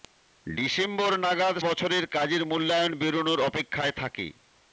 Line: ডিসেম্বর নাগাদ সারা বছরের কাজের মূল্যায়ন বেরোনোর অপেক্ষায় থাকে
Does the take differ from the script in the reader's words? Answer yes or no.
yes